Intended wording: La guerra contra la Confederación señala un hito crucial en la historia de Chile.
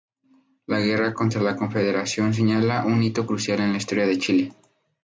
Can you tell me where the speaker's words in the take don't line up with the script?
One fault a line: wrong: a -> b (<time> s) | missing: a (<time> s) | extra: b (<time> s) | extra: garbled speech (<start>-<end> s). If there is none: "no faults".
no faults